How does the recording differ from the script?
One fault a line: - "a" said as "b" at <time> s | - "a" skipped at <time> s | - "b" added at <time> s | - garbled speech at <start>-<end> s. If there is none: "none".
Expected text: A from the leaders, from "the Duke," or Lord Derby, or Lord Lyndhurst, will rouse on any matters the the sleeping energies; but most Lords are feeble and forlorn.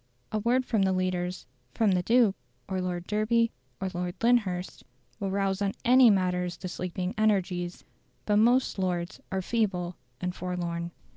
- "word" added at 0.4 s
- "the" skipped at 6.7 s